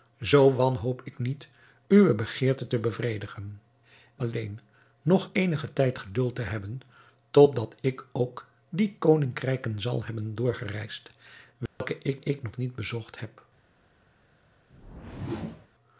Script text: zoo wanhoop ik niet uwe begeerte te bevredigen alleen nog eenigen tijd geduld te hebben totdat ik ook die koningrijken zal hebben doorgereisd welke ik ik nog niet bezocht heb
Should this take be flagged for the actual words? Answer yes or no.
no